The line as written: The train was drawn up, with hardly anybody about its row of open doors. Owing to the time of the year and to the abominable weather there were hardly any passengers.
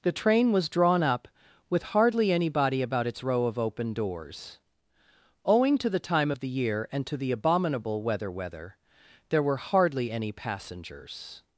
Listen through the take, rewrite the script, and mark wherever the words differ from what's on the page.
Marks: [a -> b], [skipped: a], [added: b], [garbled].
The train was drawn up, with hardly anybody about its row of open doors. Owing to the time of the year and to the abominable weather [added: weather] there were hardly any passengers.